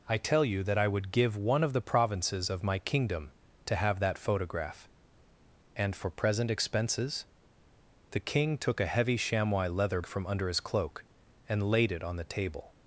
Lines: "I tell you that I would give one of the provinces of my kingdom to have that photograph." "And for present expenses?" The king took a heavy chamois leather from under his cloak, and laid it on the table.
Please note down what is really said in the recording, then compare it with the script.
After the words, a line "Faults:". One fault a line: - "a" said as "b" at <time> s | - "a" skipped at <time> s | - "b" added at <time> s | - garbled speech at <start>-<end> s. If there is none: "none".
"I tell you that I would give one of the provinces of my kingdom to have that photograph." "And for present expenses?" The king took a heavy chamois leather from under his cloak, and laid it on the table.
Faults:
none